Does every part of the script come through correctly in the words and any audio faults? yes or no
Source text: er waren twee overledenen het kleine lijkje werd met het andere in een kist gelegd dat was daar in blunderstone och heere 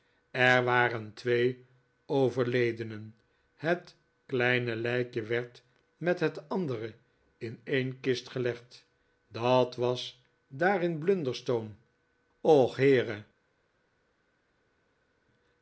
yes